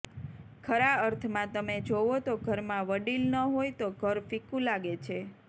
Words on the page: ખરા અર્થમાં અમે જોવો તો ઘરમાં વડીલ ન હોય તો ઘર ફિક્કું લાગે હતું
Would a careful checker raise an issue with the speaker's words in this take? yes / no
yes